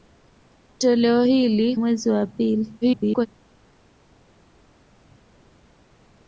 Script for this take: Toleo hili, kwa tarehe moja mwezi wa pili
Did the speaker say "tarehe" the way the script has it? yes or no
no